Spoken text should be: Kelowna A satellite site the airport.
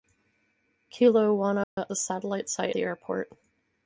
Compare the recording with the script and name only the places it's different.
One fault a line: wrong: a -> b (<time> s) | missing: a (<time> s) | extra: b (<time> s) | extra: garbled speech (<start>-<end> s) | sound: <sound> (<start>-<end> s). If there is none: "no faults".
sound: dropout (1.6-1.8 s)